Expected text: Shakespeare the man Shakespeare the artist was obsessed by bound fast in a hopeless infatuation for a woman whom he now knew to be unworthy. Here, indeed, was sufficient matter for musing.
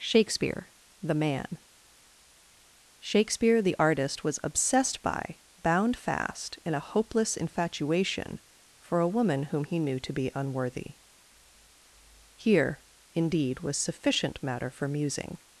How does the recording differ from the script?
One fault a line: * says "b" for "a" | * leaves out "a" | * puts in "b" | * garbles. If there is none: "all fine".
* leaves out "now"